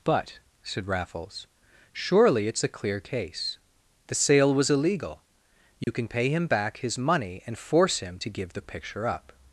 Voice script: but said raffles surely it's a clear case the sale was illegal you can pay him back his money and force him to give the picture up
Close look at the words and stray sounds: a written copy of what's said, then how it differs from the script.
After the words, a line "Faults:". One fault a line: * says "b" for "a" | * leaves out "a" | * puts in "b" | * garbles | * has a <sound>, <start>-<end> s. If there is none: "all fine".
but said raffles surely it's a clear case the sale was illegal you can pay him back his money and force him to give the picture up
Faults:
* has a dropout, 5.8-5.9 s